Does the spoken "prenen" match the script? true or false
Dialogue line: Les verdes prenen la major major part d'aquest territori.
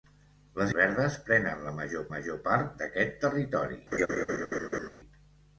true